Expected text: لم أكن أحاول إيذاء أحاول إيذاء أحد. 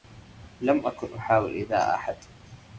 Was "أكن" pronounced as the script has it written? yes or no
yes